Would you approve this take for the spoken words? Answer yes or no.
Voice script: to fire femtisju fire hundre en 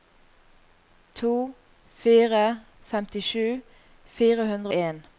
yes